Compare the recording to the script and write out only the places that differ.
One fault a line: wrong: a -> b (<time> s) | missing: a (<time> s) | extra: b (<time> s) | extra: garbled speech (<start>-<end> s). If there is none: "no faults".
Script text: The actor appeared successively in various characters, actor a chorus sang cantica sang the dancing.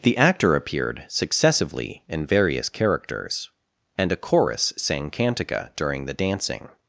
wrong: actor -> and (4.0 s)
wrong: sang -> during (5.8 s)